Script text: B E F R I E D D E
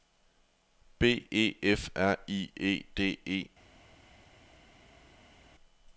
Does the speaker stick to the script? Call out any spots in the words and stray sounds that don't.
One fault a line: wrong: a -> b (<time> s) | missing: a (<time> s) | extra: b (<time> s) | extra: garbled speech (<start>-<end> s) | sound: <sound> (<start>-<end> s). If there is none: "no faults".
missing: D (3.2 s)